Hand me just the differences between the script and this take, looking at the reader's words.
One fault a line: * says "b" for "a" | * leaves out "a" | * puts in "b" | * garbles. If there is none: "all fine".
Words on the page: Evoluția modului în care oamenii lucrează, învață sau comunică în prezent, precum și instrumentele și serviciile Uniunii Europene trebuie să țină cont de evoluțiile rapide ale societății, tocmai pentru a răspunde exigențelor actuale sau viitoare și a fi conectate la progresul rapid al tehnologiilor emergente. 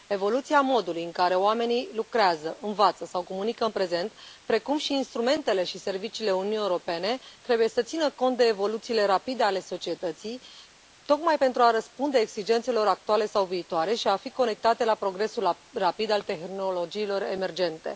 all fine